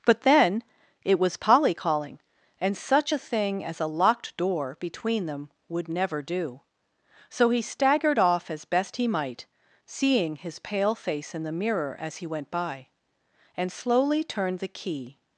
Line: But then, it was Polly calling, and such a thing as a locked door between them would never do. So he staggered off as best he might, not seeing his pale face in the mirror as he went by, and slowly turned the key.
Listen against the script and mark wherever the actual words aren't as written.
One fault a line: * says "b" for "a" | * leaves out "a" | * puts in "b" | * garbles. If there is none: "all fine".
* leaves out "not"